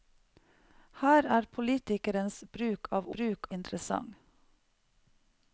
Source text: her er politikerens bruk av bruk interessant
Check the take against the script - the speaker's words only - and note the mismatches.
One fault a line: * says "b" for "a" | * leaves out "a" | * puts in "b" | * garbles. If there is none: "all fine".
all fine